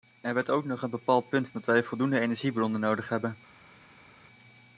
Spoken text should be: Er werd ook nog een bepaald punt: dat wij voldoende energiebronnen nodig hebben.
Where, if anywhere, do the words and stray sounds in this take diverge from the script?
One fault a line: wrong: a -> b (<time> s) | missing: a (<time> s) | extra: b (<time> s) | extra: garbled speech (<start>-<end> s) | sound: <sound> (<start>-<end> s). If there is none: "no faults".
no faults